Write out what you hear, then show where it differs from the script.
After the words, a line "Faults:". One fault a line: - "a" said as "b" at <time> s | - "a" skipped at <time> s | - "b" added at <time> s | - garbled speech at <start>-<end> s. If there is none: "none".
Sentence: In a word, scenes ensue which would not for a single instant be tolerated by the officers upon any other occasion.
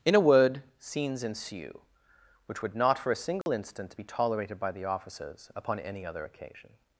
In a word, scenes ensue which would not for a single instant be tolerated by the officers upon any other occasion.
Faults:
none